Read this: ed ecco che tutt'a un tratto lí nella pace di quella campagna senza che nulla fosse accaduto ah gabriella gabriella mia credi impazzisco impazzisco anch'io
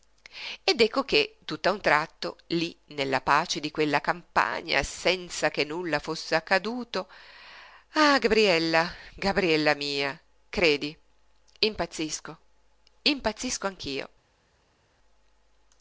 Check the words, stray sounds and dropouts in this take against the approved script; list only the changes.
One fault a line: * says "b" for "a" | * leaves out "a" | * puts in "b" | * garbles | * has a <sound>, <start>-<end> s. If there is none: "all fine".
all fine